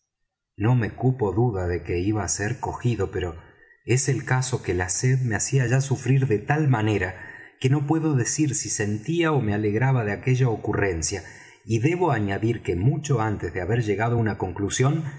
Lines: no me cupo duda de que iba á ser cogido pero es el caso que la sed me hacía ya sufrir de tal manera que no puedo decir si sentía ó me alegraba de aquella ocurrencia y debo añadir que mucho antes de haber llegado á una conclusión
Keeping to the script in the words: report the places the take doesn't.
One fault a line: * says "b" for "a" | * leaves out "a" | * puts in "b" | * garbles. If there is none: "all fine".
all fine